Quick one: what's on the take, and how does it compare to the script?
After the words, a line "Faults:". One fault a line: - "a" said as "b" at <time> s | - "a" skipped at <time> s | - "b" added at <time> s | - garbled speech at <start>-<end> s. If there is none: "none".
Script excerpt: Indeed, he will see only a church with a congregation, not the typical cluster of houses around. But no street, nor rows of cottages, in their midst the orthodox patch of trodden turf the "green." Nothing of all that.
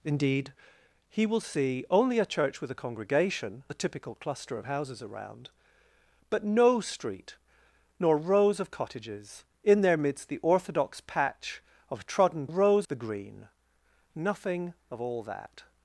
Indeed, he will see only a church with a congregation, the typical cluster of houses around. But no street, nor rows of cottages, in their midst the orthodox patch of trodden rows the "green." Nothing of all that.
Faults:
- "not" skipped at 3.6 s
- "turf" said as "rows" at 12.5 s